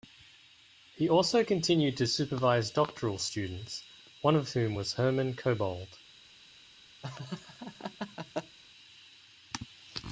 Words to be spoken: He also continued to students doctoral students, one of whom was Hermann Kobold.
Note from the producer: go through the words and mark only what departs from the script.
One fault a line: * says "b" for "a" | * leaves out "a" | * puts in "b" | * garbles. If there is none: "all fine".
* says "supervise" for "students"